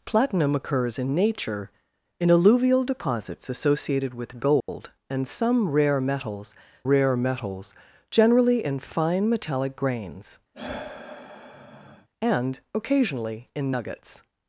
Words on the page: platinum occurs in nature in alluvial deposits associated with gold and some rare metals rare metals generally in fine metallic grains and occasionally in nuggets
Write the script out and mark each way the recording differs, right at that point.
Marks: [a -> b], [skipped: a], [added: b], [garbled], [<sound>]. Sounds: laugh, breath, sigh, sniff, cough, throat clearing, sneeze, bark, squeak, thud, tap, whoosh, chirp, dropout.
platinum occurs in nature in alluvial deposits associated with gold [dropout] and some rare metals rare metals generally in fine metallic grains [sigh] and occasionally in nuggets